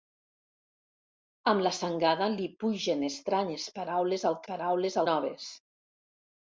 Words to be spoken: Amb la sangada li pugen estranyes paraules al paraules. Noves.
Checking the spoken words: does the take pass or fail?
pass